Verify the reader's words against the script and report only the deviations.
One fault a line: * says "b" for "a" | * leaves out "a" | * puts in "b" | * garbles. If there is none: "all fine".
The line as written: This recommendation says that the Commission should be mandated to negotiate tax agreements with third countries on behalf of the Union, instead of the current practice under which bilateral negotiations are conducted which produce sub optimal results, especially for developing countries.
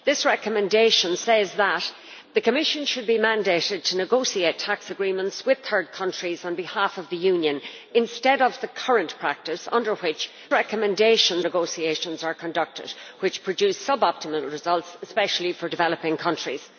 * says "recommendation" for "bilateral"